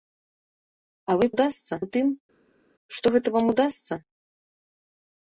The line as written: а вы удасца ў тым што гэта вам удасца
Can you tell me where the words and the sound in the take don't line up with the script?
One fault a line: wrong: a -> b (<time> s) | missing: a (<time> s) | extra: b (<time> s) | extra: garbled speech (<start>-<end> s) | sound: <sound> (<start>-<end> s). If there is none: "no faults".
no faults